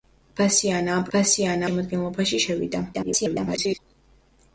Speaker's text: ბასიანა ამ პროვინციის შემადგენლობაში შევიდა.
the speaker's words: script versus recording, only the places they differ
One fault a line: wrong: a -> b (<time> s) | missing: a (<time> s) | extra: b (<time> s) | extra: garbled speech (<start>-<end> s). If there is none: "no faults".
wrong: პროვინციის -> ბასიანა (1.1 s)
extra: garbled speech (2.9-3.8 s)